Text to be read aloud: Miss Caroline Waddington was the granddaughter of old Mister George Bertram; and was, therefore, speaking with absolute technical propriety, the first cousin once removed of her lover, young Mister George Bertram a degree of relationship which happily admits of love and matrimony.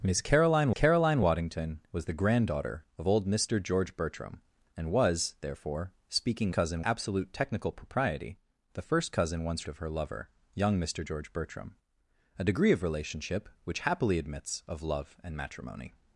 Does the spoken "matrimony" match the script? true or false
true